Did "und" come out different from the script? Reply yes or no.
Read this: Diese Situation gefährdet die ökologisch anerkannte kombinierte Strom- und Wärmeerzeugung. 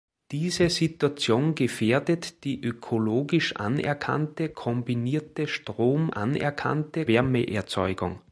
yes